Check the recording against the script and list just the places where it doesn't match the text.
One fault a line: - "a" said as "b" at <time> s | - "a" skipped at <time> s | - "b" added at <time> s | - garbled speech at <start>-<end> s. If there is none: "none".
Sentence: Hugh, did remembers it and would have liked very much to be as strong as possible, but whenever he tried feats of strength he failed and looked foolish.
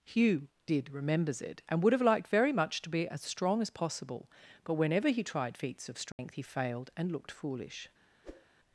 none